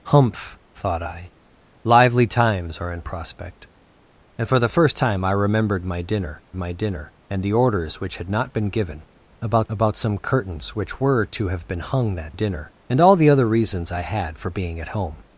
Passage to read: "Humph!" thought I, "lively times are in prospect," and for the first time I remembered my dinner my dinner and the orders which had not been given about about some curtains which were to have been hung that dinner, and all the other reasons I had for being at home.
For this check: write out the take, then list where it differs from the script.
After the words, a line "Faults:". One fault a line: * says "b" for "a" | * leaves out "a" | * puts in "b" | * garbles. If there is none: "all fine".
"Humph!" thought I, "lively times are in prospect," and for the first time I remembered my dinner my dinner and the orders which had not been given about about some curtains which were to have been hung that dinner, and all the other reasons I had for being at home.
Faults:
all fine